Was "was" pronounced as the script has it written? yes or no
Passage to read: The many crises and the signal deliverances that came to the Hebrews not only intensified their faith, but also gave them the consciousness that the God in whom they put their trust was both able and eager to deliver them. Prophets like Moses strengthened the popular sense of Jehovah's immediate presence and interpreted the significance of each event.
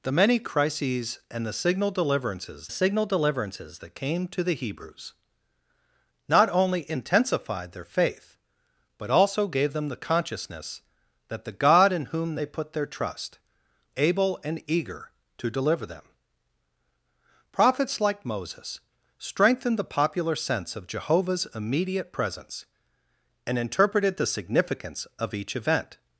no